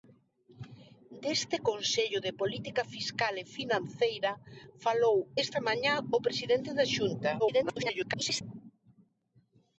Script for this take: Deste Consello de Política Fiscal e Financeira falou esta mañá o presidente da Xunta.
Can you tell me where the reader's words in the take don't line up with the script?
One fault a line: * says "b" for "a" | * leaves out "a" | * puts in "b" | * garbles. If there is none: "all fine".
* garbles